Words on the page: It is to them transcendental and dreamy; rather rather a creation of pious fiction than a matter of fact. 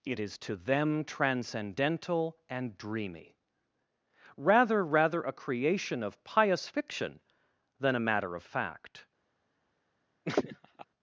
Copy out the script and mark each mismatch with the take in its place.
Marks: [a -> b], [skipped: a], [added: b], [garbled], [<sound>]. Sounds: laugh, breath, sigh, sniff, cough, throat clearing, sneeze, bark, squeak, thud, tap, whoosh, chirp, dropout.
It is to them transcendental and dreamy; rather rather a creation of pious fiction than a matter of fact. [laugh]